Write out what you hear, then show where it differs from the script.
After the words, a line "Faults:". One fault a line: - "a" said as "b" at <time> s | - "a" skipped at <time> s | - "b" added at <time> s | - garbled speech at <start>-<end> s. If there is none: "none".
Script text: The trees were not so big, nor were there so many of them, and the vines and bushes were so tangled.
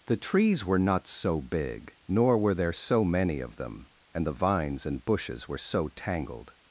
The trees were not so big, nor were there so many of them, and the vines and bushes were so tangled.
Faults:
none